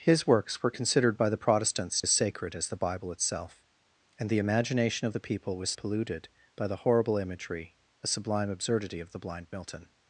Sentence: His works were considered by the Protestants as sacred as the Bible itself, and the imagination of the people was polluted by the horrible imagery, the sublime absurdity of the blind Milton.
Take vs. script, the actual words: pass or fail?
pass